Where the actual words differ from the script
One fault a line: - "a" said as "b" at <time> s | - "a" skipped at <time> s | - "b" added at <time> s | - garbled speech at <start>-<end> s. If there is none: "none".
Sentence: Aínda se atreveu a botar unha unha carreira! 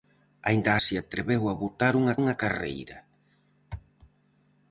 none